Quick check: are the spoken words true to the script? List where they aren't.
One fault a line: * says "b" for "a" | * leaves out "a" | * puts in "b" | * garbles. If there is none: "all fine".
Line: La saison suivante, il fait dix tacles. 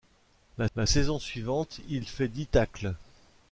* puts in "la"